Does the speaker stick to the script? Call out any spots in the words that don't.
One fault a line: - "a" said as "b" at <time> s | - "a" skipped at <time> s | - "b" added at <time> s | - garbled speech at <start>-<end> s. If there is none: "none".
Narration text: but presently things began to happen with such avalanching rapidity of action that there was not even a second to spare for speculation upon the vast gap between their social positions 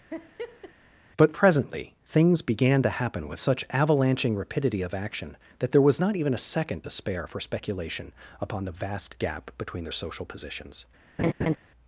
none